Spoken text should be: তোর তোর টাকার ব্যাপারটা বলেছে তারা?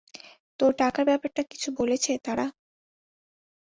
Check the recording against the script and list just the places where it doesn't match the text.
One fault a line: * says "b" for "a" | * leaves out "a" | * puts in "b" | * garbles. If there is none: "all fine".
* leaves out "তোর"
* puts in "কিছু"